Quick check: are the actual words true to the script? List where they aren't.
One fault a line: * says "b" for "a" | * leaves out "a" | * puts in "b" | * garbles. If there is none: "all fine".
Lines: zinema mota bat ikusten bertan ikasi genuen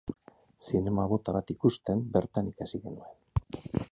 all fine